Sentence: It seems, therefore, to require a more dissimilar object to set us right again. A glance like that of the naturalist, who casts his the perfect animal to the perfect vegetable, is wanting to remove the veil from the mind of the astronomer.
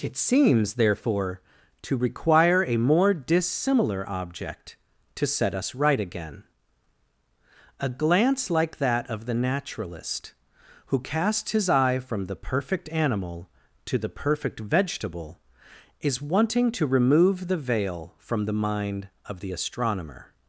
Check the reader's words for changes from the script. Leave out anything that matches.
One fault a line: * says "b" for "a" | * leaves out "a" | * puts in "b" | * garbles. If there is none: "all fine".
* puts in "eye from"